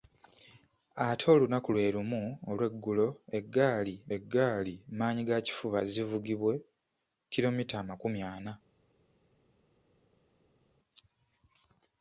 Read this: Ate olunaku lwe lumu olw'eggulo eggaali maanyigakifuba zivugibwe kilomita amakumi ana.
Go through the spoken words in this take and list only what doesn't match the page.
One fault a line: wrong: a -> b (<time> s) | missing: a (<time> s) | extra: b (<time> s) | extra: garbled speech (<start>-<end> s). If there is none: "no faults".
extra: eggaali (4.1 s)